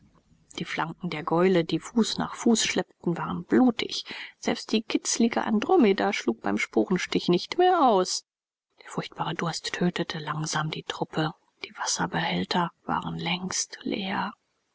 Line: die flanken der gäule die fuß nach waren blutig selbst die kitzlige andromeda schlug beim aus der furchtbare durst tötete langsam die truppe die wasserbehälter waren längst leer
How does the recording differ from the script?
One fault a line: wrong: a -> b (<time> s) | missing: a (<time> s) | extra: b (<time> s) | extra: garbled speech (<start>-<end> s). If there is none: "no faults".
extra: fuß schleppten (2.3 s)
extra: sporenstich nicht mehr (6.6 s)